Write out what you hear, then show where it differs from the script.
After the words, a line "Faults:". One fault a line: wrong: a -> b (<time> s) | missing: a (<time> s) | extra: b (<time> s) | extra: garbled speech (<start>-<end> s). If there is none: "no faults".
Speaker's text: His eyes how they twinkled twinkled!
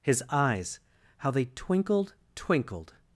His eyes how they twinkled twinkled!
Faults:
no faults